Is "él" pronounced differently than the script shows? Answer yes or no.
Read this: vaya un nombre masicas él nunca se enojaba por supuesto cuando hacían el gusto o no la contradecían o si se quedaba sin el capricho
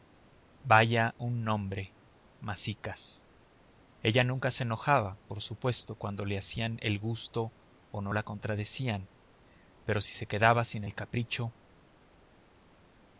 yes